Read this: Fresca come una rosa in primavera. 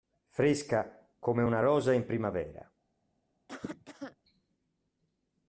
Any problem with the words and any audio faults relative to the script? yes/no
yes